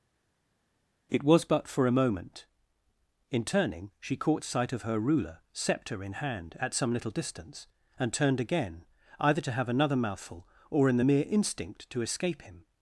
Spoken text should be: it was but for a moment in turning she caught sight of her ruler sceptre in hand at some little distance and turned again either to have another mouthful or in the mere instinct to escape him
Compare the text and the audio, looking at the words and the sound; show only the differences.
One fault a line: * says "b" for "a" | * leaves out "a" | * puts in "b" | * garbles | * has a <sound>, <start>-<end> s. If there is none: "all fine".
all fine